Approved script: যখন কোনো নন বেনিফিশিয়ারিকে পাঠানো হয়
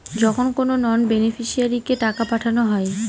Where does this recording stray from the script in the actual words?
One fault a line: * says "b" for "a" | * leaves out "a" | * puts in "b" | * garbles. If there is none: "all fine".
* puts in "টাকা"